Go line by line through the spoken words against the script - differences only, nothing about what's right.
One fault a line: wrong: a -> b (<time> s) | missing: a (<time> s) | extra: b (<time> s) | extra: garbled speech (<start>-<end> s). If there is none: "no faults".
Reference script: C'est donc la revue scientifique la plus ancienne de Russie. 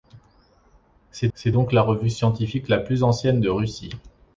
extra: c'est (1.3 s)